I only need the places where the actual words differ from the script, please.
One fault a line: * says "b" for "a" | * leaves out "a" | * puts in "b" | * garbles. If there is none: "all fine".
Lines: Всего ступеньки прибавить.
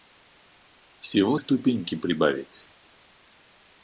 all fine